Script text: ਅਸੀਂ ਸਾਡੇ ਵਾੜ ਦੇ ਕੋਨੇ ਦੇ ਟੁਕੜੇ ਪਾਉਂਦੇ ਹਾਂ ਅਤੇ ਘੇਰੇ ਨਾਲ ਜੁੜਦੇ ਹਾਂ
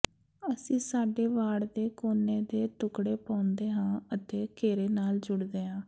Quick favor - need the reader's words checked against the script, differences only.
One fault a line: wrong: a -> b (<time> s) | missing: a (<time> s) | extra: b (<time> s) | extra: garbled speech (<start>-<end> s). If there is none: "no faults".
no faults